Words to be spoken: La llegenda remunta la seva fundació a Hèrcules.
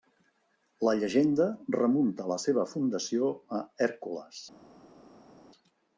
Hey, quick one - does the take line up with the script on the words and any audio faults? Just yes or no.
yes